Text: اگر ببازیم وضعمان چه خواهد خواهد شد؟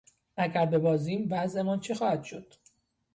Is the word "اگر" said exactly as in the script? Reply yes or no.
yes